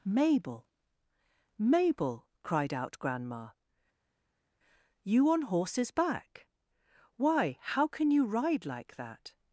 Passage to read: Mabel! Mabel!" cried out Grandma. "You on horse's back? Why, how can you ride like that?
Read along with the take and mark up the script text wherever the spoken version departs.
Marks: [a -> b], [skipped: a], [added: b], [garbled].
Mabel! Mabel!" cried out Grandma. "You on horse's back? Why, how can you ride like that?